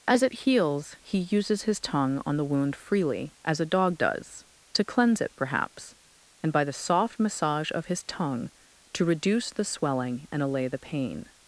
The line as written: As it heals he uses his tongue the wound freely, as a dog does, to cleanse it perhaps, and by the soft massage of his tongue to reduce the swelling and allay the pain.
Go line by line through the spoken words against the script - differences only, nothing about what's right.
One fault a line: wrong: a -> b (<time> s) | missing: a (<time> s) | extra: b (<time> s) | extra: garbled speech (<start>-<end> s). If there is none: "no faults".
extra: on (2.2 s)